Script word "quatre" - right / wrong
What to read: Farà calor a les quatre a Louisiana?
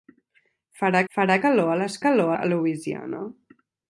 wrong